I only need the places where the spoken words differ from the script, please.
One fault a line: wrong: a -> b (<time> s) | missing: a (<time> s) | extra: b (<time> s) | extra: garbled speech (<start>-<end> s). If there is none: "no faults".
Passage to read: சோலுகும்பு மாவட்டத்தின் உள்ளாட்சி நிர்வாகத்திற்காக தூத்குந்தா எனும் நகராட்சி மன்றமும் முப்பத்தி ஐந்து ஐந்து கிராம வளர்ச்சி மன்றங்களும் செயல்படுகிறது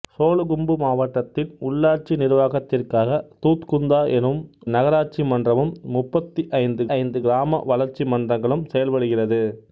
no faults